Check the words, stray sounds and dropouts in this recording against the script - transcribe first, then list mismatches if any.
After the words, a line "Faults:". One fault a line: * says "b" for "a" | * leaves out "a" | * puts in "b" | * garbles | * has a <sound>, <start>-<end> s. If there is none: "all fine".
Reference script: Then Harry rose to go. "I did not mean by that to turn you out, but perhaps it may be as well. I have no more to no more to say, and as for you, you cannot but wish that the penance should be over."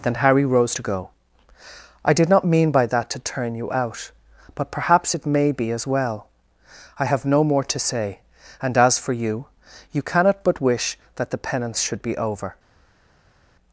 Then Harry rose to go. "I did not mean by that to turn you out, but perhaps it may be as well. I have no more to say, and as for you, you cannot but wish that the penance should be over."
Faults:
* leaves out "no more to"